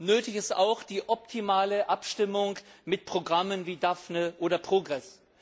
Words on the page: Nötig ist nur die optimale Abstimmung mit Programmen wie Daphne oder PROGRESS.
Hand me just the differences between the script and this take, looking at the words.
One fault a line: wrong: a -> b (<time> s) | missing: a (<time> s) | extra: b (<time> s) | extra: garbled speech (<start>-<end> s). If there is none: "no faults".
wrong: nur -> auch (0.6 s)